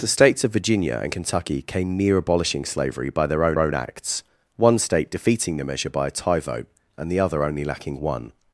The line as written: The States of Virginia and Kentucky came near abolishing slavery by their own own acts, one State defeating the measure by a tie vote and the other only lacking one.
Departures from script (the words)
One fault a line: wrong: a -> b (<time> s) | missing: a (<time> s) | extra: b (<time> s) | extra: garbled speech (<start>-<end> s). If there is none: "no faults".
no faults